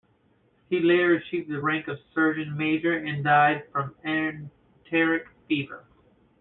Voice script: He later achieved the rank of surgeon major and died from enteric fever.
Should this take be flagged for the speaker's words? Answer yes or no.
no